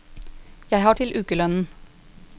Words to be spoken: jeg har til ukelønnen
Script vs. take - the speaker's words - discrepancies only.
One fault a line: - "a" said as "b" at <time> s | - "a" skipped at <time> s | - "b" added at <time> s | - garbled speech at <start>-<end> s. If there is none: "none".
none